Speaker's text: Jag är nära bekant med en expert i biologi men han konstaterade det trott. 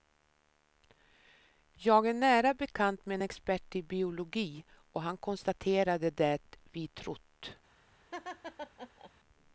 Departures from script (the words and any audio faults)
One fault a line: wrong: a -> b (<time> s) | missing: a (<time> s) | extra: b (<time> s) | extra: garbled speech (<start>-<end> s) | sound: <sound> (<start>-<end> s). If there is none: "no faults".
wrong: men -> och (4.9 s)
extra: vi (6.7 s)
sound: laugh (8.1-9.1 s)